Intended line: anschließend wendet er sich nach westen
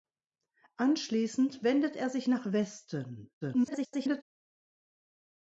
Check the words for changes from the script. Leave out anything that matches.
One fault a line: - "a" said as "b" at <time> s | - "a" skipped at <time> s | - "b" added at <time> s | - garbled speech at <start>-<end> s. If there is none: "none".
- garbled speech at 3.4-4.2 s